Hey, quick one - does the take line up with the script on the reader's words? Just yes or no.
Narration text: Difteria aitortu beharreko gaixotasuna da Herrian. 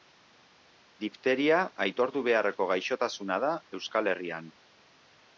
no